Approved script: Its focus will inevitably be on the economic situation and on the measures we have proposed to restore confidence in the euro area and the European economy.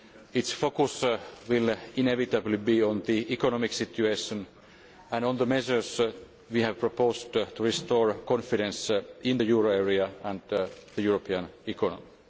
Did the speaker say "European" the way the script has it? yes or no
yes